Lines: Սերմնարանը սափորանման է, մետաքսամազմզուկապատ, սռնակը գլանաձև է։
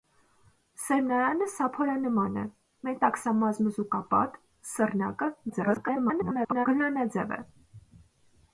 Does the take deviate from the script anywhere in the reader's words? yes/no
yes